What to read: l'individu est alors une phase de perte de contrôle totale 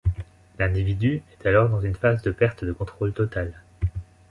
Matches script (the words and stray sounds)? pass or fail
fail